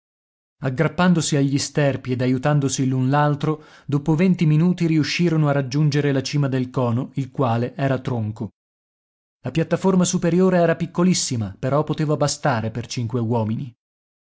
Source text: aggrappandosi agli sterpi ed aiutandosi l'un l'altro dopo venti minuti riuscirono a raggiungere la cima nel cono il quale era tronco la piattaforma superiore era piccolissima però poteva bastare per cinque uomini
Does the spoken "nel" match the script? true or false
false